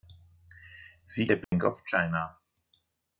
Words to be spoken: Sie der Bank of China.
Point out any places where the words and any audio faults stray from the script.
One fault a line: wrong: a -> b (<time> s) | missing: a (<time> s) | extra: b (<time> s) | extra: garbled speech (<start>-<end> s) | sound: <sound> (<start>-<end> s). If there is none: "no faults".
sound: dropout (1.4-1.5 s)